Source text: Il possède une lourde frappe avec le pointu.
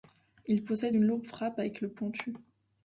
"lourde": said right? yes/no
yes